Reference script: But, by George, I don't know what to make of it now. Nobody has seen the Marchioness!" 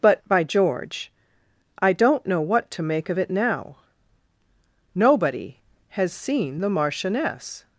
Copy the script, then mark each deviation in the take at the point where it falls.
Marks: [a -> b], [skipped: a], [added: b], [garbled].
But, by George, I don't know what to make of it now. Nobody has seen the Marchioness!"